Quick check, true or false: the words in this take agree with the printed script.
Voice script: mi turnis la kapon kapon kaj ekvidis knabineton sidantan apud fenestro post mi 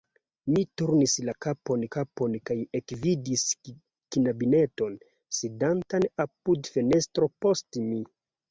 true